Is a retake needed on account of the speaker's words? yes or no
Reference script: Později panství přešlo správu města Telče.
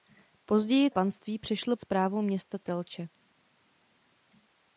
no